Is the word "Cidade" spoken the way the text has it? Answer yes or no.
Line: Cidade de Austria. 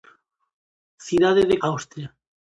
yes